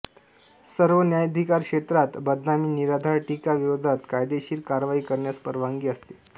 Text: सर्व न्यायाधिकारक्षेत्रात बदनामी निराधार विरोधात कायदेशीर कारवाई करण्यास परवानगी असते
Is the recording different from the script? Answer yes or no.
yes